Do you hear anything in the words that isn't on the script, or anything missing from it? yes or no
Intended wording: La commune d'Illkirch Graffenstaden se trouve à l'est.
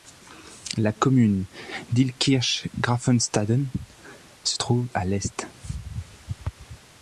no